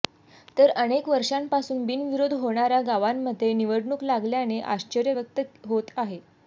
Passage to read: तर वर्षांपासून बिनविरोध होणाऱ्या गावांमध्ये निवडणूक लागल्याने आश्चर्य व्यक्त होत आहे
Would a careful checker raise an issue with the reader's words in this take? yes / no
yes